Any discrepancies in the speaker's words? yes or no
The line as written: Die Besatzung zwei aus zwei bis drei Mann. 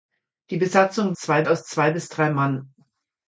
no